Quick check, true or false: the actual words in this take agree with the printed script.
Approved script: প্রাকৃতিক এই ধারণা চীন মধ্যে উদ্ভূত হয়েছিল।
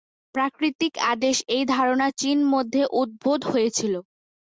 false